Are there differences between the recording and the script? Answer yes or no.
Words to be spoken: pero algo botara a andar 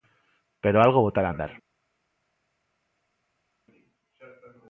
no